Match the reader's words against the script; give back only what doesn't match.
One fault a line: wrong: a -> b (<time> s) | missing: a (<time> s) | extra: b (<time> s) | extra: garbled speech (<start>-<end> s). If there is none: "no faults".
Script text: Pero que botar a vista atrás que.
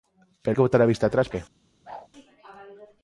no faults